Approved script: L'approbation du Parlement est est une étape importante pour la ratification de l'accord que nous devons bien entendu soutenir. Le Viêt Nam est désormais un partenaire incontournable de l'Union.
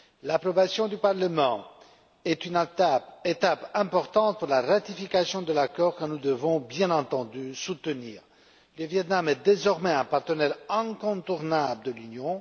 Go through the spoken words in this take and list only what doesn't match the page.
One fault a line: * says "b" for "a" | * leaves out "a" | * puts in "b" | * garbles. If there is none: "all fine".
* leaves out "est"